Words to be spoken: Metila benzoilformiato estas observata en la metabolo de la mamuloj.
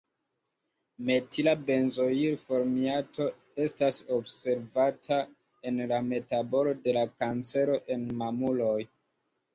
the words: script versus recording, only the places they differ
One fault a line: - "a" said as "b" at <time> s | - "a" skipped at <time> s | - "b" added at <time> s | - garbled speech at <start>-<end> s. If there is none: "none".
- "kancero en" added at 7.2 s